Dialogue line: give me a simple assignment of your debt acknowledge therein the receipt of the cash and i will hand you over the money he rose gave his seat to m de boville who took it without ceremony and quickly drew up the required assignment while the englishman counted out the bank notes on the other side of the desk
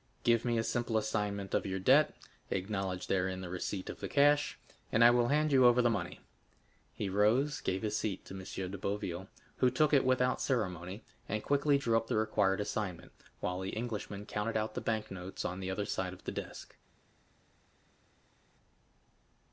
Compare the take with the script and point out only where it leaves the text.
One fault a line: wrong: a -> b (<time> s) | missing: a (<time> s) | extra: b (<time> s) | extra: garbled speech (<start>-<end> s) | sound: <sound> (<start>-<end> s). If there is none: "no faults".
no faults